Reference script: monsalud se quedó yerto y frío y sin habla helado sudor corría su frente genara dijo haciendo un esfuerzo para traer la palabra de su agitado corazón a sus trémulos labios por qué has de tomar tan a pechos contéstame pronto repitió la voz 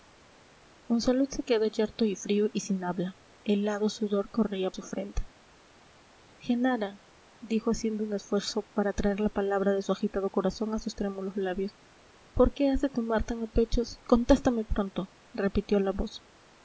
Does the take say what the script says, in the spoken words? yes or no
yes